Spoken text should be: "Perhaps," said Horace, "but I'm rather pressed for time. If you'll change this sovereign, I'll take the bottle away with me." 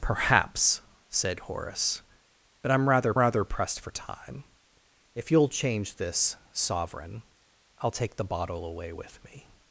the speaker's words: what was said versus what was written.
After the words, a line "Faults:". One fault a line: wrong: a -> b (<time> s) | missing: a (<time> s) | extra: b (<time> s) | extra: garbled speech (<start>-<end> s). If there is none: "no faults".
"Perhaps," said Horace, "but I'm rather rather pressed for time. If you'll change this sovereign, I'll take the bottle away with me."
Faults:
extra: rather (3.2 s)